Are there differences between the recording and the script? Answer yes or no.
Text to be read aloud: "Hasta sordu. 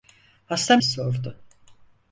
no